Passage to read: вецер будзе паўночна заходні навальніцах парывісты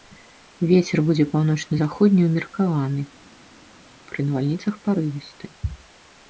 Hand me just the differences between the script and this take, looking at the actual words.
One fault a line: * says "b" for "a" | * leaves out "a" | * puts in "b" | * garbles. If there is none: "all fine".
* puts in "ўмеркаваны пры"